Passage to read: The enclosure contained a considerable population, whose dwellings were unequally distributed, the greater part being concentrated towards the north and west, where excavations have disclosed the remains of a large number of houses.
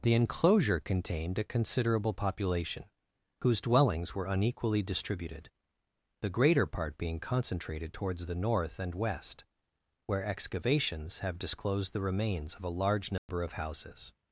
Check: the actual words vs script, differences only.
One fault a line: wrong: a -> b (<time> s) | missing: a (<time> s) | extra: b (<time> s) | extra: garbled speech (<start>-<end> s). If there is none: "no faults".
no faults